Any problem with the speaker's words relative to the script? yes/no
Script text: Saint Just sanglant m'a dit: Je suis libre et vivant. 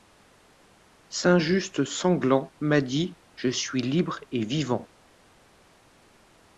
no